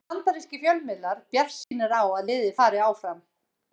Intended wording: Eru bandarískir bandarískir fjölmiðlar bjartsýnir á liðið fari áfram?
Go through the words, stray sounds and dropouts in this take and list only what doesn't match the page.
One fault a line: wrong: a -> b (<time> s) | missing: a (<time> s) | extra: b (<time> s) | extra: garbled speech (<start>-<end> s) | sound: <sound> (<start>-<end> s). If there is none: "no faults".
missing: bandarískir (0.6 s)
sound: dropout (1.6-1.7 s)
extra: að (2.1 s)